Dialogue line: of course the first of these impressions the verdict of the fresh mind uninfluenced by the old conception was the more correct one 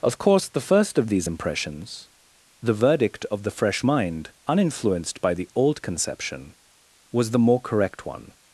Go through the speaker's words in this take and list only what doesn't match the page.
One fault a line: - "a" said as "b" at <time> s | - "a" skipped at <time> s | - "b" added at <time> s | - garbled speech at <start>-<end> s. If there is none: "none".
none